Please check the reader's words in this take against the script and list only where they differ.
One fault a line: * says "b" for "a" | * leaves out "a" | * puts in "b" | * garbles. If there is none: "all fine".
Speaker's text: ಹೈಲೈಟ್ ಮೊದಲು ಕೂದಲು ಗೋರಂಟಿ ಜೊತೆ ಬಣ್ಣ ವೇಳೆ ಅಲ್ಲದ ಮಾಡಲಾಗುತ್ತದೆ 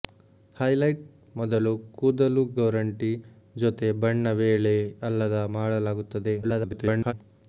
* garbles